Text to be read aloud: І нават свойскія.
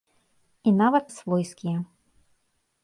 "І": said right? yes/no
yes